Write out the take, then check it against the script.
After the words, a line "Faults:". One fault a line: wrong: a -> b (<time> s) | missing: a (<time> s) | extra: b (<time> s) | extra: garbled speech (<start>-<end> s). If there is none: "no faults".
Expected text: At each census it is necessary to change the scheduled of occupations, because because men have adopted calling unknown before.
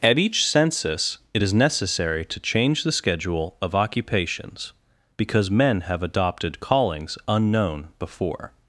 At each census it is necessary to change the schedule of occupations, because men have adopted callings unknown before.
Faults:
wrong: scheduled -> schedule (2.9 s)
missing: because (5.5 s)
wrong: calling -> callings (6.6 s)